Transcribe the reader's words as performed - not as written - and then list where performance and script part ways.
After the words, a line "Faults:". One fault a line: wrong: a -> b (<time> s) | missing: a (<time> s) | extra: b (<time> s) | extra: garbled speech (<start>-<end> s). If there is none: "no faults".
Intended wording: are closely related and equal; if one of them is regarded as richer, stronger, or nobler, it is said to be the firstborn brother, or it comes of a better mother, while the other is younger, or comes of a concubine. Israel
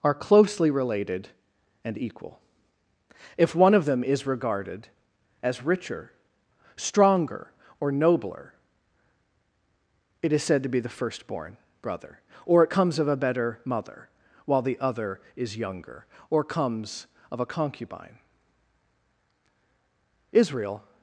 are closely related and equal; if one of them is regarded as richer, stronger, or nobler, it is said to be the firstborn brother, or it comes of a better mother, while the other is younger, or comes of a concubine. Israel
Faults:
no faults